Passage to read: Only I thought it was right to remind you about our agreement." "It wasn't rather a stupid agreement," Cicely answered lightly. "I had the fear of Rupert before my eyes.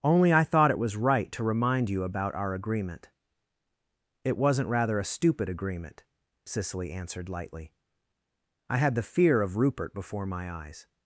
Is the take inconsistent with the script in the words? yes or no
no